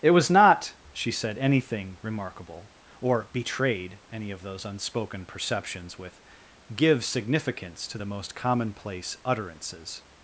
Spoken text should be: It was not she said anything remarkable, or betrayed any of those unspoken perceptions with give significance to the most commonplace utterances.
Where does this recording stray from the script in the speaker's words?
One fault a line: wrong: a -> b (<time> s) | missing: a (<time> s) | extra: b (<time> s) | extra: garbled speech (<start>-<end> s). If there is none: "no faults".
no faults